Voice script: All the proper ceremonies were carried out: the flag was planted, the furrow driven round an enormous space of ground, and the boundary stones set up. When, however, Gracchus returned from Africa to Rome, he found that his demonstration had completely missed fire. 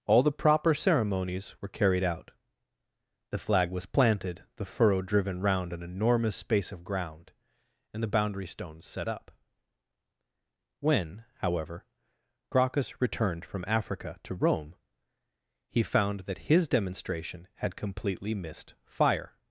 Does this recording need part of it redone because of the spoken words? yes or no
no